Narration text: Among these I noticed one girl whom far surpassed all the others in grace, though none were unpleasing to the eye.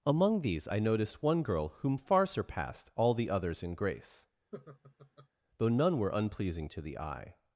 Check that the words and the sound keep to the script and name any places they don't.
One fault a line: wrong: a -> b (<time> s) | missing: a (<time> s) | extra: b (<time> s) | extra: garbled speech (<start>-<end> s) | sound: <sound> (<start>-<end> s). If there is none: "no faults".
sound: laugh (4.5-5.3 s)